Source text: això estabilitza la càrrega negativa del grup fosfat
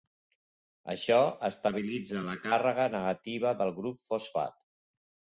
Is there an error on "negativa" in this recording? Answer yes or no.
no